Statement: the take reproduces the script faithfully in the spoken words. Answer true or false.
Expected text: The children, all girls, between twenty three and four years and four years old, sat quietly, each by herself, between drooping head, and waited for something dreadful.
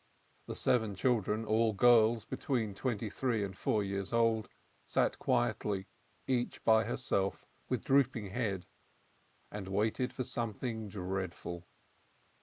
false